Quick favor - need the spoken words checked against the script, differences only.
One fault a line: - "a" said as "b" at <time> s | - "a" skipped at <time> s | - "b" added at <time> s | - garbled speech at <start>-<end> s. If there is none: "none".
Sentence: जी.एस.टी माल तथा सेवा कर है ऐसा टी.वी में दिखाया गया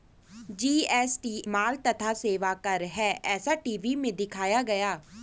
none